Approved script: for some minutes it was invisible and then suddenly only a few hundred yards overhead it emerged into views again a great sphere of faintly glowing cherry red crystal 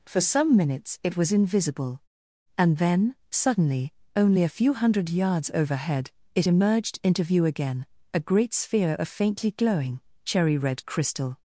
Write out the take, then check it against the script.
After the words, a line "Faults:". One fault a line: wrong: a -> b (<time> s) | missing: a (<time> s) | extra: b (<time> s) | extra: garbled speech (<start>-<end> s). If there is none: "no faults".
for some minutes it was invisible and then suddenly only a few hundred yards overhead it emerged into view again a great sphere of faintly glowing cherry red crystal
Faults:
wrong: views -> view (7.2 s)